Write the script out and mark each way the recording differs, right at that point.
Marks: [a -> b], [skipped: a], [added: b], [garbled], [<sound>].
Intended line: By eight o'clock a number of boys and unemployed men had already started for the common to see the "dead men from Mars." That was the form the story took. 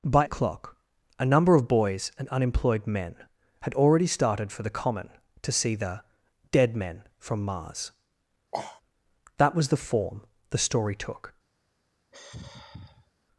By [skipped: eight] o'clock a number of boys and unemployed men had already started for the common to see the "dead men from Mars." [sniff] That was the form the story took. [sigh]